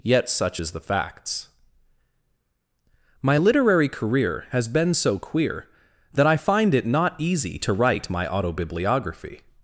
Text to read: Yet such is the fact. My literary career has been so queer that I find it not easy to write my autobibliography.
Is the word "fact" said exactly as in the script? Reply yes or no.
no